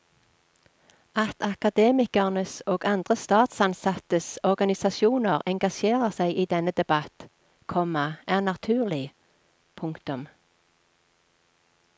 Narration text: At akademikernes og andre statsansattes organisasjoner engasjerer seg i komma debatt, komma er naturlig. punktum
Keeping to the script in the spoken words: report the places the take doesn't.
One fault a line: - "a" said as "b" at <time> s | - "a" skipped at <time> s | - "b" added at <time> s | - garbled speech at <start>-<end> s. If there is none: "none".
- "komma" said as "denne" at 6.6 s